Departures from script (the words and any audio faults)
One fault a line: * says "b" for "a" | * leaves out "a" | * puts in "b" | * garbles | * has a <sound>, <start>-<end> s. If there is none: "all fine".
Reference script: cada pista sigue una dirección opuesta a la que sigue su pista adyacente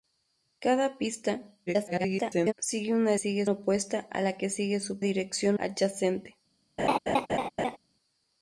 * garbles
* says "sigue" for "dirección"
* says "dirección" for "pista"
* has a laugh, 6.8-7.8 s